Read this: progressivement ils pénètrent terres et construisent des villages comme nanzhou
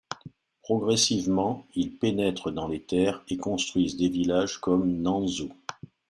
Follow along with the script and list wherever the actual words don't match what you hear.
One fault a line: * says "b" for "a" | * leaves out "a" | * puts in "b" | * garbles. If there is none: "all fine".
* puts in "dans les"